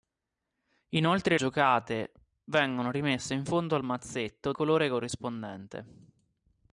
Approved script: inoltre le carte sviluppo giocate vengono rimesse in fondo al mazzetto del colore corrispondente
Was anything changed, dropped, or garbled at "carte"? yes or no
yes